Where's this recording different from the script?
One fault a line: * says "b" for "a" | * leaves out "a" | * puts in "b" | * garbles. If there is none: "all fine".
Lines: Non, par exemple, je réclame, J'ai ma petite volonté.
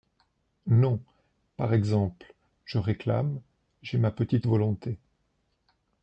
all fine